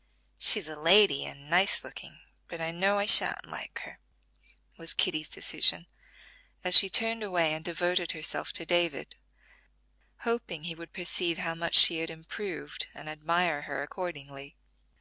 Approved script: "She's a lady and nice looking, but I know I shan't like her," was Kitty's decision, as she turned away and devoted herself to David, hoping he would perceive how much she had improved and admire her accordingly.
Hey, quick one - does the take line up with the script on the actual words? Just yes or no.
yes